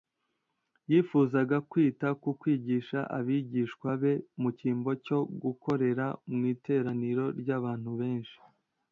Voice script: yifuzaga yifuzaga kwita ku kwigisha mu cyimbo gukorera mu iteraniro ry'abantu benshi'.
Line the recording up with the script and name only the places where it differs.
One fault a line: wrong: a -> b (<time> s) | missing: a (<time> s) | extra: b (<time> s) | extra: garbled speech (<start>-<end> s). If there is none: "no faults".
missing: yifuzaga (1.6 s)
extra: abigishwa be (3.2 s)
extra: cyo (5.0 s)